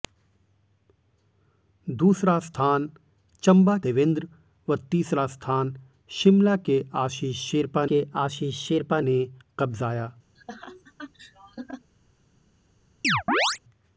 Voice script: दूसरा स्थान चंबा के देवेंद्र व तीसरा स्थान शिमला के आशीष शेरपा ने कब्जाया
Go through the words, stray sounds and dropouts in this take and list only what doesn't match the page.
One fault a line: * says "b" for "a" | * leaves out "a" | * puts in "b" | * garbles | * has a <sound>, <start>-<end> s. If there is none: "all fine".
* leaves out "के"
* puts in "के आशीष शेरपा"
* has a laugh, 10.4-11.9 s
* has a chirp, 13.0-13.6 s